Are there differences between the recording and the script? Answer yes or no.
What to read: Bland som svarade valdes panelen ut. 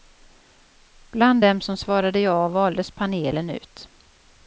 yes